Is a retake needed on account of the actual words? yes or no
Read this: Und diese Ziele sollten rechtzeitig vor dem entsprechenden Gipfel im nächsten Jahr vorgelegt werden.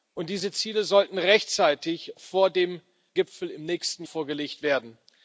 yes